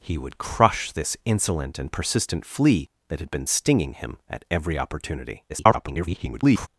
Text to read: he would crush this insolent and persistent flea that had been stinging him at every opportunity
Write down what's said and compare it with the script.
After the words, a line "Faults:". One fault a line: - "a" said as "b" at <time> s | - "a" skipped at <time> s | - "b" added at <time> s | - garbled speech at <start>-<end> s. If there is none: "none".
he would crush this insolent and persistent flea that had been stinging him at every opportunity [garbled]
Faults:
- garbled speech at 5.5-6.7 s